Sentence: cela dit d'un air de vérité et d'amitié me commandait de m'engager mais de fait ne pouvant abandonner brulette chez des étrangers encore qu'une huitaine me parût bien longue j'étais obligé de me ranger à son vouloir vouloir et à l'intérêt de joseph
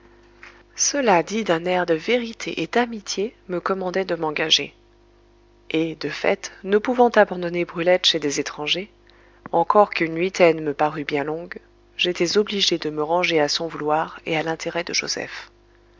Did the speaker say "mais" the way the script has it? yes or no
no